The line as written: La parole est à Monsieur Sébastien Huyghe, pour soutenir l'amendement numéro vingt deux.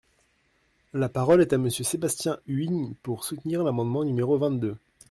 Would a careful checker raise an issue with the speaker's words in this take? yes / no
no